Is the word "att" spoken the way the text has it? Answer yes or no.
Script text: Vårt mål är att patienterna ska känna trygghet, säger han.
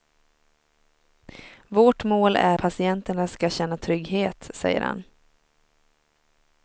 no